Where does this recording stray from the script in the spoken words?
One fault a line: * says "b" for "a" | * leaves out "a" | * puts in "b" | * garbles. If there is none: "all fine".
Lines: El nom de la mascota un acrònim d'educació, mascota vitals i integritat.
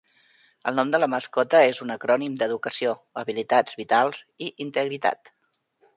* puts in "és"
* says "habilitats" for "mascota"